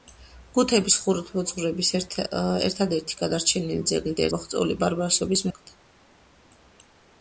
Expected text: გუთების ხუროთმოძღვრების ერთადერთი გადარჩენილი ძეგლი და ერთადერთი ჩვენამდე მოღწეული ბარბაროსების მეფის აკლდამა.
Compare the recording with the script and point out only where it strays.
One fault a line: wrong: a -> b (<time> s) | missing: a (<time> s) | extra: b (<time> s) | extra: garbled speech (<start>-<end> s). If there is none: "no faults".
missing: ერთადერთი ჩვენამდე (4.2 s)
missing: მეფის (5.5 s)